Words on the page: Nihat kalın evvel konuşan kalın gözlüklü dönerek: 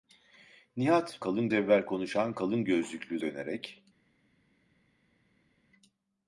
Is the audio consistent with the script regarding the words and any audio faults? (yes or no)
yes